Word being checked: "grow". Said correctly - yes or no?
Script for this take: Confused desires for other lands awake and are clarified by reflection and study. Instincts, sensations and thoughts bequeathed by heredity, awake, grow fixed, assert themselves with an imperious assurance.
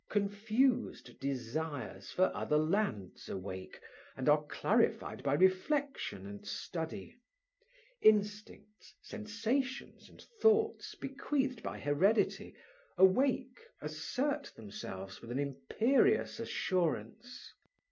no